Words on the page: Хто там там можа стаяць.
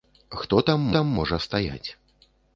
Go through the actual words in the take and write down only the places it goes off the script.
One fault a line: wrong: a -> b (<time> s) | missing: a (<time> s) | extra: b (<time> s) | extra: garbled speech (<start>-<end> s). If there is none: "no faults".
no faults